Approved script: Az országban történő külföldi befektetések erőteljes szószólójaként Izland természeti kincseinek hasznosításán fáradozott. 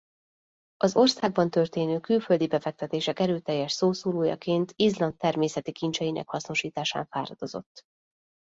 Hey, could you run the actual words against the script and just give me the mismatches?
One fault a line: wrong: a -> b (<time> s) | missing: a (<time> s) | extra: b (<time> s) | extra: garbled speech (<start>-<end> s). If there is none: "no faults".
no faults